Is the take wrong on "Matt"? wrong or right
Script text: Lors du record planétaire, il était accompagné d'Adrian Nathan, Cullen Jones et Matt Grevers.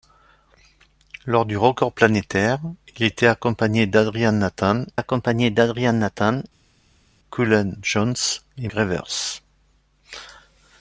wrong